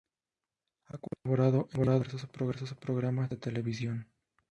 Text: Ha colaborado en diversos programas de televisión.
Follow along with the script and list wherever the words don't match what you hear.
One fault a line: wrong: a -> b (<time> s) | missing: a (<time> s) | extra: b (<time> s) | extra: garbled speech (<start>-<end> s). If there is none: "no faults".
no faults